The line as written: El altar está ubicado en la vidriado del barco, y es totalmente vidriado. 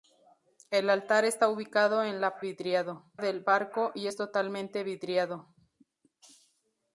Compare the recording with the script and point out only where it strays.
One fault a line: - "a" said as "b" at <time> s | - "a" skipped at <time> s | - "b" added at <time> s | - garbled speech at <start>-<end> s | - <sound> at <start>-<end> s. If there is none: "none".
none